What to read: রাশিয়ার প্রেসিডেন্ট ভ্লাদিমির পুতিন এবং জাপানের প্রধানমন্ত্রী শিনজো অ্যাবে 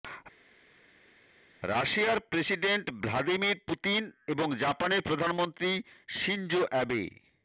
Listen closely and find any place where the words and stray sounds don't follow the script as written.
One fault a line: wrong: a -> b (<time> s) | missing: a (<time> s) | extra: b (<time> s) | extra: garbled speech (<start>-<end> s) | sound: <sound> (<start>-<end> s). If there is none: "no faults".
no faults